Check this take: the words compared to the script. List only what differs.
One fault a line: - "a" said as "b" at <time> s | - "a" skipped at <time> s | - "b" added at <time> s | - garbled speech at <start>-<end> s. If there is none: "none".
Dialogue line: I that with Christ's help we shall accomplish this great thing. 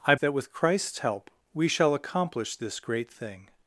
none